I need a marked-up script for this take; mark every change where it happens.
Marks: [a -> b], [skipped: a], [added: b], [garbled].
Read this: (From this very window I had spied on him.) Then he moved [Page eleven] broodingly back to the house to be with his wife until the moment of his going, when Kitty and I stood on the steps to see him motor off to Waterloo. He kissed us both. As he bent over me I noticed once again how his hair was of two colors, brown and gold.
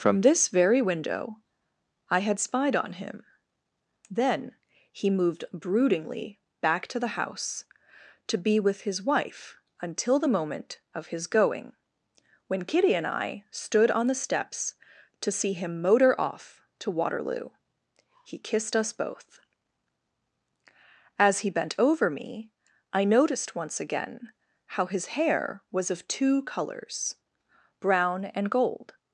(From this very window I had spied on him.) Then he moved [skipped: [Page eleven]] broodingly back to the house to be with his wife until the moment of his going, when Kitty and I stood on the steps to see him motor off to Waterloo. He kissed us both. As he bent over me I noticed once again how his hair was of two colors, brown and gold.